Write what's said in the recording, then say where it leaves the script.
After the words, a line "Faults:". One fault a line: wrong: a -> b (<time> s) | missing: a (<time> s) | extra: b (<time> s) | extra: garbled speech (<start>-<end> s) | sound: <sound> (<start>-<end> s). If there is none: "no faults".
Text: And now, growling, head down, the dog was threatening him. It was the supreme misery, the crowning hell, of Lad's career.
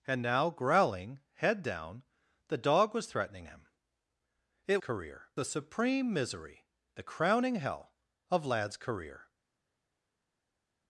And now, growling, head down, the dog was threatening him. It career the supreme misery, the crowning hell, of Lad's career.
Faults:
wrong: was -> career (4.8 s)